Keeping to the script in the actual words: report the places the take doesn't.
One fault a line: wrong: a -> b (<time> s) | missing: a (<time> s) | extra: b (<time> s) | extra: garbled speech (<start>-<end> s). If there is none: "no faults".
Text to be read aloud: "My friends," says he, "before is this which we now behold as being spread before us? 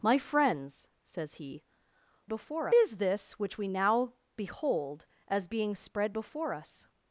no faults